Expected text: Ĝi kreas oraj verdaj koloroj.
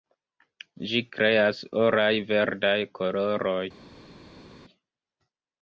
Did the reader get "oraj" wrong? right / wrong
right